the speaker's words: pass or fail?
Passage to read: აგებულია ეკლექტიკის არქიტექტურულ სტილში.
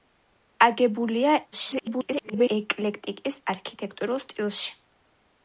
fail